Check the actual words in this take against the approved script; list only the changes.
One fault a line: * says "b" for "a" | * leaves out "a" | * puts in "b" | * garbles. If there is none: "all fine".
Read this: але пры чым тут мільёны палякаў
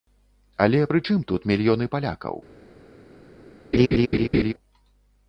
all fine